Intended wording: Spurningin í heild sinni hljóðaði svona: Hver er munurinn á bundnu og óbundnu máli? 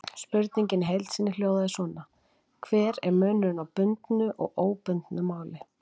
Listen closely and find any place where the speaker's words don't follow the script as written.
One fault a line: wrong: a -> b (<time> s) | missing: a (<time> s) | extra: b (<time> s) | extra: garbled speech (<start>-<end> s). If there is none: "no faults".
no faults